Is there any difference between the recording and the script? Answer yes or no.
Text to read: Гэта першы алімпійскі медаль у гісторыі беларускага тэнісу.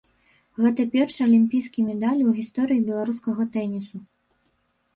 no